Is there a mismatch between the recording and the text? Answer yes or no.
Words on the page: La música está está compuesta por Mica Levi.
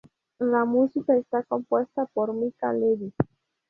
yes